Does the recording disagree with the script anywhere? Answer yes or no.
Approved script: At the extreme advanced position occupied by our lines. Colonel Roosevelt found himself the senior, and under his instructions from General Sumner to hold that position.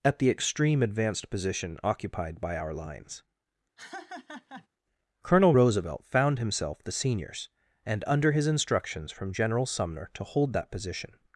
yes